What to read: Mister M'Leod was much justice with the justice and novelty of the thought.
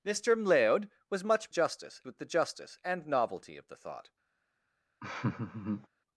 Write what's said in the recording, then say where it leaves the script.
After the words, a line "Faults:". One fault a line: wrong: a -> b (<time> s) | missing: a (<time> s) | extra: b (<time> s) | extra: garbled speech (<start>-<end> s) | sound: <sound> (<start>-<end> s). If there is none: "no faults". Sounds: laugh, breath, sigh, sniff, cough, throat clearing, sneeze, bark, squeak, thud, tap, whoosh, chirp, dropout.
Mister M'Leod was much justice with the justice and novelty of the thought.
Faults:
sound: laugh (5.0-5.9 s)